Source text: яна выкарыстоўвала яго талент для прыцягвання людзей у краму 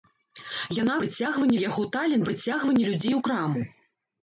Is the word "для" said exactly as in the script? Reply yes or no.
no